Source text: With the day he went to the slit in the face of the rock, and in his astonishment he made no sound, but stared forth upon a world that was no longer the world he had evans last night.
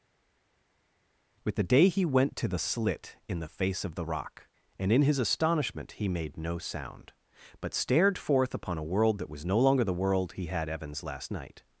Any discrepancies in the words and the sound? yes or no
no